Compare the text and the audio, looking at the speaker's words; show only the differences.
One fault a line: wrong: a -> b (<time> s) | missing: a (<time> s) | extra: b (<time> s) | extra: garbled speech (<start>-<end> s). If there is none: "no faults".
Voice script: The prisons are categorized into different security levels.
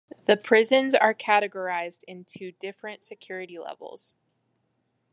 no faults